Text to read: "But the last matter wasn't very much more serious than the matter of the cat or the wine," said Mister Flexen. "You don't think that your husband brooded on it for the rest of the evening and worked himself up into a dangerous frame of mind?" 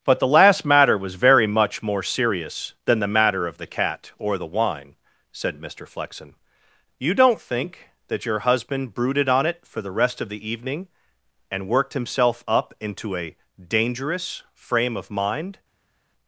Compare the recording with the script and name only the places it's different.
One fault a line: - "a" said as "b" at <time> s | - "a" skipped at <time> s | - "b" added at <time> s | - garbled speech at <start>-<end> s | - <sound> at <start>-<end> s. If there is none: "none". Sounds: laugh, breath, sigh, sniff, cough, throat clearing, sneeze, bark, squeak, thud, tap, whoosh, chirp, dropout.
- "wasn't" said as "was" at 1.0 s